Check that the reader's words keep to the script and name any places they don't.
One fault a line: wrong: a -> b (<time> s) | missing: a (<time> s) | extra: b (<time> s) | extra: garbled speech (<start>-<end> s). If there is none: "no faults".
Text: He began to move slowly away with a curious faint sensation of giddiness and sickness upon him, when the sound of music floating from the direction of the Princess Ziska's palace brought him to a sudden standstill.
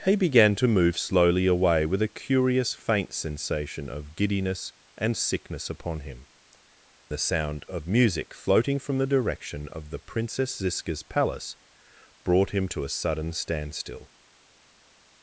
missing: when (6.2 s)